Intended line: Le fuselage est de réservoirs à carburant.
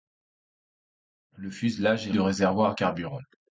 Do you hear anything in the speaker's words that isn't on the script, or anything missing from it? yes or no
no